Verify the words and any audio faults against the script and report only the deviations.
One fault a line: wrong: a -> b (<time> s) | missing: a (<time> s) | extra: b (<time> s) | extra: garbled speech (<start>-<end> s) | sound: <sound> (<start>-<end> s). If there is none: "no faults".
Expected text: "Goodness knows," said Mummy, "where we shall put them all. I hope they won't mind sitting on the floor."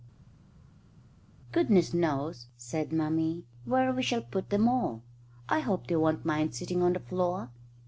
no faults